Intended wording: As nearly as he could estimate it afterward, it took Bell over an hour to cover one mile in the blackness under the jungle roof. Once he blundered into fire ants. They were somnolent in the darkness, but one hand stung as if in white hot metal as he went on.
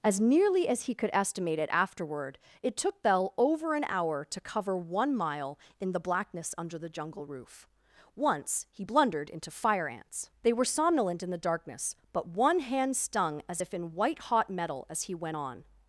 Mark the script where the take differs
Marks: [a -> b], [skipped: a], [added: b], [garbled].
As nearly as he could estimate it afterward, it took Bell over an hour to cover one mile in the blackness under the jungle roof. Once he blundered into fire ants. They were somnolent in the darkness, but one hand stung as if in white hot metal as he went on.